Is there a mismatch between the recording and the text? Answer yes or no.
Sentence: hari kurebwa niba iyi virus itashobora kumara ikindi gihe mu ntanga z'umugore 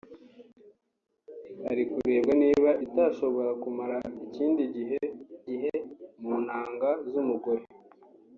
yes